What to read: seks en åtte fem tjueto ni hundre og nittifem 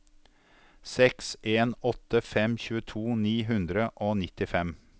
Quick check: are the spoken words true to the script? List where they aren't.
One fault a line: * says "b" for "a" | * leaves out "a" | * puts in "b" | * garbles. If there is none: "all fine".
all fine